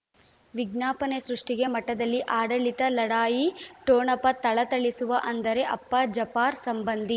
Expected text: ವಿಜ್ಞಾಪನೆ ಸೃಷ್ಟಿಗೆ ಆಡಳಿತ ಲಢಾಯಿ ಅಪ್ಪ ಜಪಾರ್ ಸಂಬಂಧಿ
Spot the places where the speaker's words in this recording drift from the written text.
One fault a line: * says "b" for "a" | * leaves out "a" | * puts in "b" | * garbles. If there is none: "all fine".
* puts in "ಮಠದಲ್ಲಿ"
* puts in "ಠೊಣಪ ಥಳಥಳಿಸುವ ಅಂದರೆ"